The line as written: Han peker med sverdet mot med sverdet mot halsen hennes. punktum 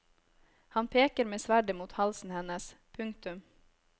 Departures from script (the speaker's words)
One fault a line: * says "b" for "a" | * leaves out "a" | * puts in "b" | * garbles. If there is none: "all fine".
* leaves out "med sverdet mot"